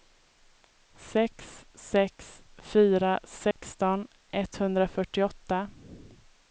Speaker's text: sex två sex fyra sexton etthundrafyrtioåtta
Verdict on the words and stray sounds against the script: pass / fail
fail